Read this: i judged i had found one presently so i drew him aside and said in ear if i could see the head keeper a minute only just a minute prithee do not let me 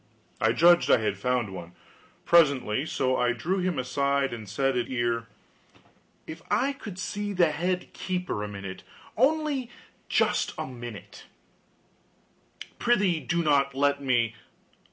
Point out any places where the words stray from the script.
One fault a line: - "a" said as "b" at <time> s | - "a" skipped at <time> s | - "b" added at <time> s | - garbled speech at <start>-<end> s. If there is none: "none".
none